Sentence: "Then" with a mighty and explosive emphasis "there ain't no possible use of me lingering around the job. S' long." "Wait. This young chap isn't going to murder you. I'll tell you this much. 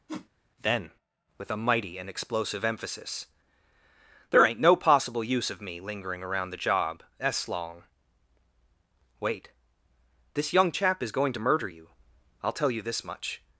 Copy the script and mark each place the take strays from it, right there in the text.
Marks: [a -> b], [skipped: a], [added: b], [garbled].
"Then" with a mighty and explosive emphasis "there ain't no possible use of me lingering around the job. S' long." "Wait. This young chap [isn't -> is] going to murder you. I'll tell you this much.